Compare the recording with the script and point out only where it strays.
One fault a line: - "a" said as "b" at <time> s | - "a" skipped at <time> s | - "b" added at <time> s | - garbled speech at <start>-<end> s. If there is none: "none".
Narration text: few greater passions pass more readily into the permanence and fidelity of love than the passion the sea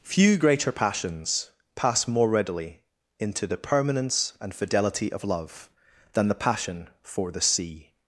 - "for" added at 7.0 s